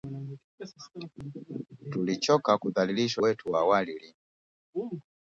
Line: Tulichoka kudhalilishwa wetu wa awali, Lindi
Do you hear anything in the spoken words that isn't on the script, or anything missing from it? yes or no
no